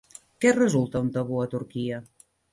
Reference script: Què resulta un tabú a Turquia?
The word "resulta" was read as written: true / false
true